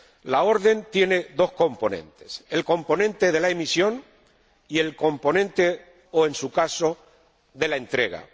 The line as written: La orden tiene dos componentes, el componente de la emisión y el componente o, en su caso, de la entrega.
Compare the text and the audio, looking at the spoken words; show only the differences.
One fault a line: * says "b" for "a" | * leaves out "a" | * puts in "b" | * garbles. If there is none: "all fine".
all fine